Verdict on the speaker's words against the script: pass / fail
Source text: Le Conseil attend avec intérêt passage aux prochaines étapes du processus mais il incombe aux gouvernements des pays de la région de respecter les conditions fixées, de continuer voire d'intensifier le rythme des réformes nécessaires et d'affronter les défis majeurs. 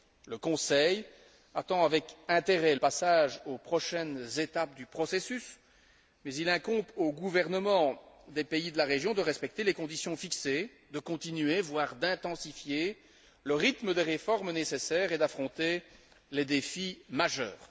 pass